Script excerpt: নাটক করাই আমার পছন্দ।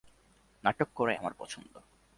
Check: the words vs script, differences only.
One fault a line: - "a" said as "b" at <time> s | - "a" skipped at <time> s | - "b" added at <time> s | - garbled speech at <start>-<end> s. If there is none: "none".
none